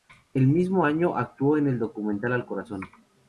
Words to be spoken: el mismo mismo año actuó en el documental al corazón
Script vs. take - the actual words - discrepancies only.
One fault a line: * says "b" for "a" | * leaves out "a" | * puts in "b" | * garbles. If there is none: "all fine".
* leaves out "mismo"